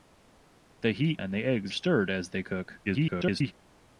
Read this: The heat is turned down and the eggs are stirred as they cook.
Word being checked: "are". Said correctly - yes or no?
no